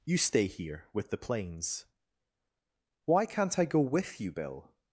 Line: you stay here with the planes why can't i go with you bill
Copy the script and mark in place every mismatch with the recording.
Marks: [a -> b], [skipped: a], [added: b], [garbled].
you stay here with the planes why can't i go with you bill